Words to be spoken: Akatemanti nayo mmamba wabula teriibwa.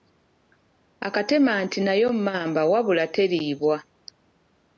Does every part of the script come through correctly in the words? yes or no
yes